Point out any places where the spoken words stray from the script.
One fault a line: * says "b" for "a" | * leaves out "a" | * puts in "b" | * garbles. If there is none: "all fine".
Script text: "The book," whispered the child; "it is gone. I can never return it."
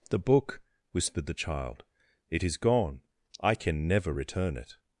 all fine